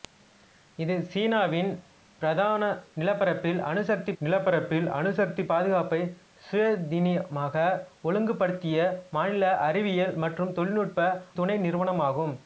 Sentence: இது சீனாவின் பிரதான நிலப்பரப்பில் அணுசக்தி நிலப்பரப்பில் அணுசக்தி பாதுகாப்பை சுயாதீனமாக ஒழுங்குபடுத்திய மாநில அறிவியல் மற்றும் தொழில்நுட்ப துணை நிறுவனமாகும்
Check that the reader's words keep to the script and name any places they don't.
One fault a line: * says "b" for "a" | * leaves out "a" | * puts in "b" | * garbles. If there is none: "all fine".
all fine